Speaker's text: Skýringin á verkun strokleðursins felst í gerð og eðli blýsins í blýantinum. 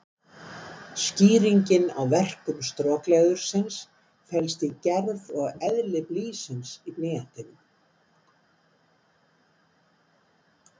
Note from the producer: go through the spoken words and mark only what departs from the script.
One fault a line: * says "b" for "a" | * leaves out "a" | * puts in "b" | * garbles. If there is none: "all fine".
all fine